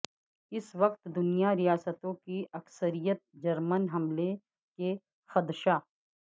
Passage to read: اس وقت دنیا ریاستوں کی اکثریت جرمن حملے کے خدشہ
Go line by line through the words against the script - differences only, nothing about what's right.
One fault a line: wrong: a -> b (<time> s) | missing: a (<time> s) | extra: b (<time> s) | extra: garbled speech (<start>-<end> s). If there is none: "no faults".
no faults